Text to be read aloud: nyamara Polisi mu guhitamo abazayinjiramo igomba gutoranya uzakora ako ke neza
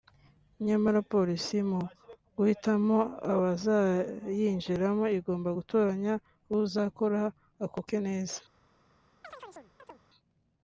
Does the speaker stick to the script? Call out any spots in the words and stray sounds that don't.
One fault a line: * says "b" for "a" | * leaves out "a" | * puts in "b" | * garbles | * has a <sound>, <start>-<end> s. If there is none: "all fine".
* has a chirp, 9.2-10.0 s